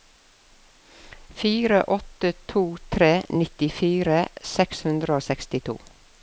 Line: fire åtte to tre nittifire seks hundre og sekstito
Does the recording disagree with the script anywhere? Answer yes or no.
no